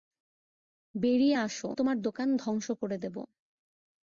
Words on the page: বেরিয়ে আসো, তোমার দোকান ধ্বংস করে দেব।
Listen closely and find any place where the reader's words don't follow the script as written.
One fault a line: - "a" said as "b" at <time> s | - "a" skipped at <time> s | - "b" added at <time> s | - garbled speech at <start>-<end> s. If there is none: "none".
none